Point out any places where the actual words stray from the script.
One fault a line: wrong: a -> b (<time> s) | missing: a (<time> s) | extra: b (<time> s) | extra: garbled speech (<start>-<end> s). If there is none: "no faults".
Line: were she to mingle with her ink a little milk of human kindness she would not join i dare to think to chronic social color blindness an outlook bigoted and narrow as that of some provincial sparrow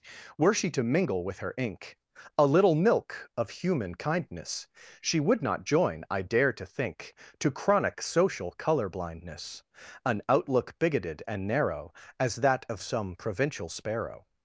no faults